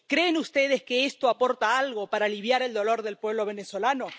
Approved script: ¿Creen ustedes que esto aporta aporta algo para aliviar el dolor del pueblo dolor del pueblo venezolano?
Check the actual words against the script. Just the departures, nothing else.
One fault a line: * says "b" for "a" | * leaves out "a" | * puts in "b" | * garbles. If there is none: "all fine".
* leaves out "aporta"
* leaves out "dolor del pueblo"